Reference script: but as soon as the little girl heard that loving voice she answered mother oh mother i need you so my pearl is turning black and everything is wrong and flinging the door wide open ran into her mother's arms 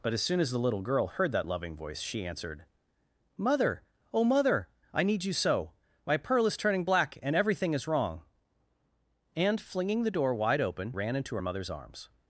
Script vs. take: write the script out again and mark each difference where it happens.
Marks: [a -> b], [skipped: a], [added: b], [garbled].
but as soon as the little girl heard that loving voice she answered mother oh mother i need you so my pearl is turning black and everything is wrong and flinging the door wide open ran into her mother's arms